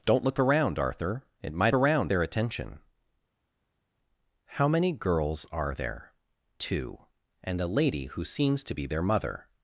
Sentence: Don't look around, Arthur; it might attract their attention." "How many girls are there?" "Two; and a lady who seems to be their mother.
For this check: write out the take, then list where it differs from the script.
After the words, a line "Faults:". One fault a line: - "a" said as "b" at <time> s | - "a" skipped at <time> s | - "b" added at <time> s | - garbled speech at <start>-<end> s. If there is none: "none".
Don't look around, Arthur; it might around their attention." "How many girls are there?" "Two; and a lady who seems to be their mother.
Faults:
- "attract" said as "around" at 1.7 s